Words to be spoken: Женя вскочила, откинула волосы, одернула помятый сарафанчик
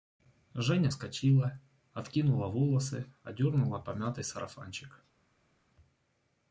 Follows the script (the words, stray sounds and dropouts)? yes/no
yes